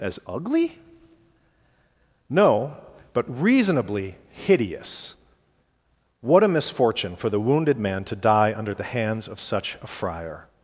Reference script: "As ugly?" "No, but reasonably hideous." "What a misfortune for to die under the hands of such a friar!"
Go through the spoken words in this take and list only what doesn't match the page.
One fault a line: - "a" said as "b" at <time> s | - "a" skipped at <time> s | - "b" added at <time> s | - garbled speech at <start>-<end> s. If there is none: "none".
- "the wounded man" added at 7.3 s